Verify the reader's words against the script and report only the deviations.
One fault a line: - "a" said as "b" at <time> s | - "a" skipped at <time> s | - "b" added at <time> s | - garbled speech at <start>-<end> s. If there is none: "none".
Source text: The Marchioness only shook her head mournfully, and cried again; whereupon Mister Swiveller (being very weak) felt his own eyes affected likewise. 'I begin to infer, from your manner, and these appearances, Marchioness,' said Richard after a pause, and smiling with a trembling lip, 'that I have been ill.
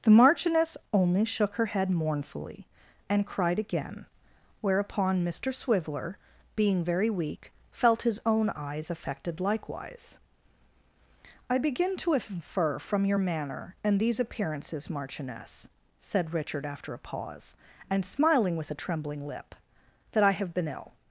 none